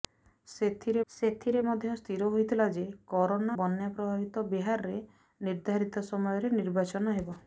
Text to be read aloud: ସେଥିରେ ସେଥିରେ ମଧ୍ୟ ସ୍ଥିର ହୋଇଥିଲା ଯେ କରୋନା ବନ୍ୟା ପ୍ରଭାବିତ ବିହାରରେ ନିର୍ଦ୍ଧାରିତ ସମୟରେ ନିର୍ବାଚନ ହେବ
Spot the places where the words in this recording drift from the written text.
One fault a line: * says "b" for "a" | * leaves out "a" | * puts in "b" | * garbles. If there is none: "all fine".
all fine